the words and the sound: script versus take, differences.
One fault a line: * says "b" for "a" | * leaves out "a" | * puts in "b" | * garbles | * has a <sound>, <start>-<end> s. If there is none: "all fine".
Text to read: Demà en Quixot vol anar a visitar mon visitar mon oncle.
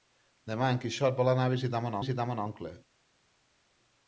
all fine